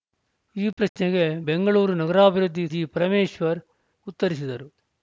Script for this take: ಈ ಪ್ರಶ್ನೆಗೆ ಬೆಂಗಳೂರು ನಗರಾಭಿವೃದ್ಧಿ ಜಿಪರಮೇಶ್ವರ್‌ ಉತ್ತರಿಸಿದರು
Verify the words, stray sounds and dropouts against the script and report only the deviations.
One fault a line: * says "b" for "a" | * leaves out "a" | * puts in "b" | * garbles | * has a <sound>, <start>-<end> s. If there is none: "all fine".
all fine